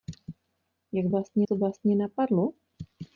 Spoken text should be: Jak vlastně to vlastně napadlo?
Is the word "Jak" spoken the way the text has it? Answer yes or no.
yes